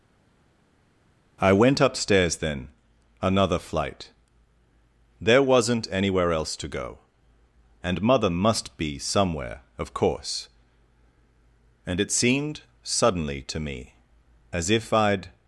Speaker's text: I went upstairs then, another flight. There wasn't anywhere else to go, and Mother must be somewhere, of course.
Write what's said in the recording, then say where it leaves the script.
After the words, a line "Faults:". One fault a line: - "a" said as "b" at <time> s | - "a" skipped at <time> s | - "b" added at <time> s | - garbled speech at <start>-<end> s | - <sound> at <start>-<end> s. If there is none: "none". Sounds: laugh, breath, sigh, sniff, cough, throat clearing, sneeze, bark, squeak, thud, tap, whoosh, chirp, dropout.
I went upstairs then, another flight. There wasn't anywhere else to go, and Mother must be somewhere, of course. And it seemed suddenly to me as if I'd
Faults:
- "And it seemed suddenly to me as if I'd" added at 11.9 s